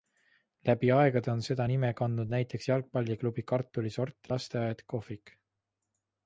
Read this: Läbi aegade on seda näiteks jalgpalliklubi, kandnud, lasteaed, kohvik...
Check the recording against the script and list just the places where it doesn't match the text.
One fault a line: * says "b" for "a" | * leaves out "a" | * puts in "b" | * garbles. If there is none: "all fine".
* puts in "nime kandnud"
* says "kartulisort" for "kandnud"